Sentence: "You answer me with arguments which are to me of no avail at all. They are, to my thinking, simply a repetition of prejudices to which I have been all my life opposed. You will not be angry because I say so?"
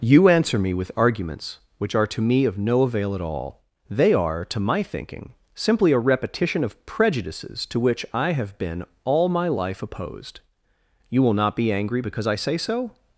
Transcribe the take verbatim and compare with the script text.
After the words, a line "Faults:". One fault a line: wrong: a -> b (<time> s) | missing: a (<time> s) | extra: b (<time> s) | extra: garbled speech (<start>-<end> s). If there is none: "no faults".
"You answer me with arguments which are to me of no avail at all. They are, to my thinking, simply a repetition of prejudices to which I have been all my life opposed. You will not be angry because I say so?"
Faults:
no faults